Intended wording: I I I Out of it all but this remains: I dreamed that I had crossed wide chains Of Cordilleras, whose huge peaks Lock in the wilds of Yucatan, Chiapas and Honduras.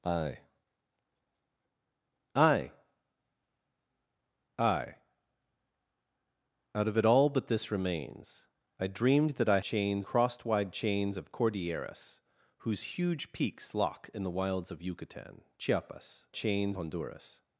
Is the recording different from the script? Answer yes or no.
yes